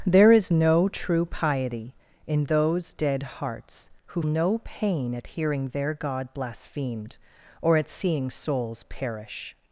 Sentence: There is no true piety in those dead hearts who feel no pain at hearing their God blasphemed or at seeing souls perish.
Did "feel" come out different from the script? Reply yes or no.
yes